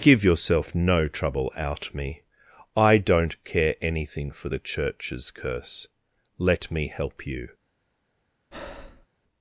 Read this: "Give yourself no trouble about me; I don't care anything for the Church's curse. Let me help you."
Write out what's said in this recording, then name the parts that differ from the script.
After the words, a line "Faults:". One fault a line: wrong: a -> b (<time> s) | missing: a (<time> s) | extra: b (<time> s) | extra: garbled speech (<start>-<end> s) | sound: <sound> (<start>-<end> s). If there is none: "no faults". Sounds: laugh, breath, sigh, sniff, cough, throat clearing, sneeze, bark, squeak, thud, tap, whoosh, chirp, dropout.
"Give yourself no trouble out me; I don't care anything for the Church's curse. Let me help you."
Faults:
wrong: about -> out (1.6 s)
sound: breath (8.5-9.1 s)